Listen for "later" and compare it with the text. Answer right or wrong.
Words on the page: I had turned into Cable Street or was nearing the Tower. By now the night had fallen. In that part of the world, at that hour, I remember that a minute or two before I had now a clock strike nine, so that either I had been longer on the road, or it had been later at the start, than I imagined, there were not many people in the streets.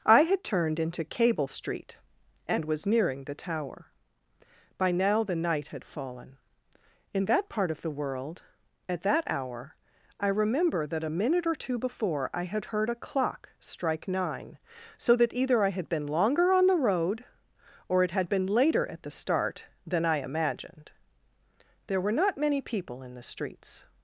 right